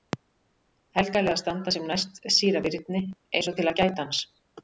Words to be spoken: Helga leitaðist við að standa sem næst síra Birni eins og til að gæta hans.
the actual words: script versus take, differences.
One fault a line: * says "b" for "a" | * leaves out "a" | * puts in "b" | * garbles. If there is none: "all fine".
* leaves out "leitaðist"